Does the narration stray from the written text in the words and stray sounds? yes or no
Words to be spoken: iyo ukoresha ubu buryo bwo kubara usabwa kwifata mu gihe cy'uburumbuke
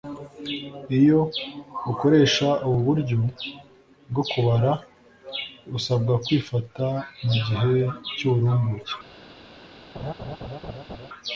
yes